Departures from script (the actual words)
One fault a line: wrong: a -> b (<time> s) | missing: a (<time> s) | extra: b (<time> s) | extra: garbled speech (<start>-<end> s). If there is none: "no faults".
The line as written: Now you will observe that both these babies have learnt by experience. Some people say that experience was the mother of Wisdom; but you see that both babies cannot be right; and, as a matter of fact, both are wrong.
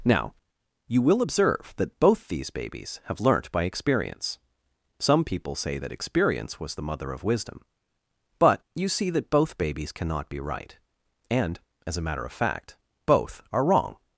no faults